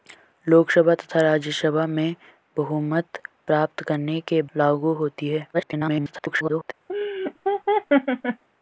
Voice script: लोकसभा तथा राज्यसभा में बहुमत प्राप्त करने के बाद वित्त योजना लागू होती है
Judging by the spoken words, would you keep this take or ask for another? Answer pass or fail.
fail